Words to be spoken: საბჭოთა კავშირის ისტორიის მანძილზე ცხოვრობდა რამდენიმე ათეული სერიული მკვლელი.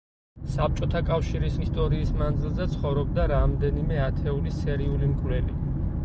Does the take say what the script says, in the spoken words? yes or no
yes